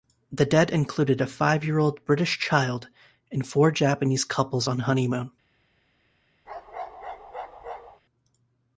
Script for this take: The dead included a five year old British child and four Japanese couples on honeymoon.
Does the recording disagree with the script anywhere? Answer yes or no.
no